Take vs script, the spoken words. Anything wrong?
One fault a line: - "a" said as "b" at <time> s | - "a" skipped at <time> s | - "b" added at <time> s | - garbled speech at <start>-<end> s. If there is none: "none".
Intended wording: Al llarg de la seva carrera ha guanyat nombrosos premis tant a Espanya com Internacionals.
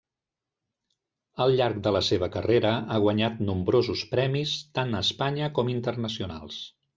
none